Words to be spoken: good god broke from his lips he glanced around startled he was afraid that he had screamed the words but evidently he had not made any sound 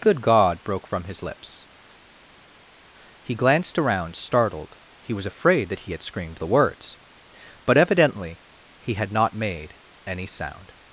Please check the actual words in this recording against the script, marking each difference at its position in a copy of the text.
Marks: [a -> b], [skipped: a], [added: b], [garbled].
good god broke from his lips he glanced around startled he was afraid that he had screamed the words but evidently he had not made any sound